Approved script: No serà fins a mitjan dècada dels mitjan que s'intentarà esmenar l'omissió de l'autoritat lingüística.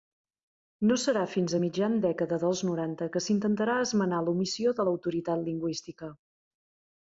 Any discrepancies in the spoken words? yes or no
yes